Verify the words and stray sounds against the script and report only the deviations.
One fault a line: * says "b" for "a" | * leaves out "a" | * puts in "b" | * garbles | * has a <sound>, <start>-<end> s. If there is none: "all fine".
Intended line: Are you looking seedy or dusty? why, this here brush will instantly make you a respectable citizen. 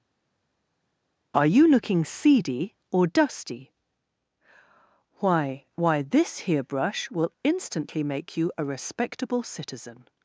* puts in "why"